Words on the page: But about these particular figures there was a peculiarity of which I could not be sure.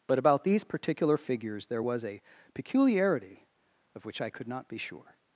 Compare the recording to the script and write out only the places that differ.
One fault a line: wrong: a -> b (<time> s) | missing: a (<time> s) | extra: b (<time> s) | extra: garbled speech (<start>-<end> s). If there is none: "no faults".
no faults